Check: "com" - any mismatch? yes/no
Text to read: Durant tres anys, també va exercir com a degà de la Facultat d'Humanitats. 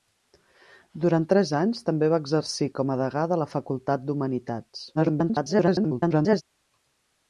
no